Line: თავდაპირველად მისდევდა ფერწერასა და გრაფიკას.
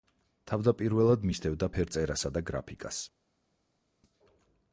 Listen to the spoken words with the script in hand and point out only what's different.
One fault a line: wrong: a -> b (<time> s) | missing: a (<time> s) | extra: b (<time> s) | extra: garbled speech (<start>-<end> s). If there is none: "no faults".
no faults